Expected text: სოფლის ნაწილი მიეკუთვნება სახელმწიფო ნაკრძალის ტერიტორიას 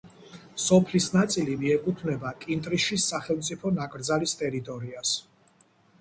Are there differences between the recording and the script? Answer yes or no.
yes